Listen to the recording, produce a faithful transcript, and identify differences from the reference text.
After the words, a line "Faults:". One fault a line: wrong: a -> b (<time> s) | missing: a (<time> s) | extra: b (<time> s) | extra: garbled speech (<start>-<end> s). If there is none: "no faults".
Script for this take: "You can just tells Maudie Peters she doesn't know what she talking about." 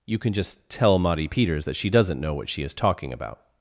"You can just tell Maudie Peters that she doesn't know what she is talking about."
Faults:
wrong: tells -> tell (0.7 s)
extra: that (1.6 s)
extra: is (2.6 s)